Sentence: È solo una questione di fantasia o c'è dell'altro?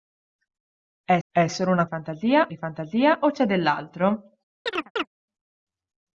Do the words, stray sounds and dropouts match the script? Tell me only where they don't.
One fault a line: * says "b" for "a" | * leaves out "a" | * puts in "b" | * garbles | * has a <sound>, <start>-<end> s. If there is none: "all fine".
* puts in "è"
* says "fantasia" for "questione"
* has a chirp, 4.7-5.1 s